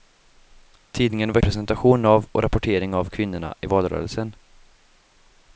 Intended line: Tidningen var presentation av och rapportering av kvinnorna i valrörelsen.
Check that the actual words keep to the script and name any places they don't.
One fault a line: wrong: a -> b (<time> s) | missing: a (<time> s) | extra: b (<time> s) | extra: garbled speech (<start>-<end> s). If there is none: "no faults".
no faults